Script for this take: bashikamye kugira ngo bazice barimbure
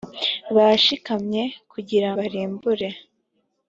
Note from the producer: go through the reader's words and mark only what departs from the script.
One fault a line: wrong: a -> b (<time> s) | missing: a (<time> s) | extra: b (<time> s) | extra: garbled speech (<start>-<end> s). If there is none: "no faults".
missing: ngo bazice (2.1 s)